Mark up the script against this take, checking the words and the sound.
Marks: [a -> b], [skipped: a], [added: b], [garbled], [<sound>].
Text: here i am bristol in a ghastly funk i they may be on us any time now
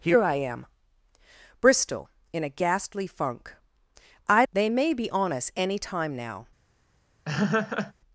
here i am bristol in a ghastly funk i they may be on us any time now [laugh]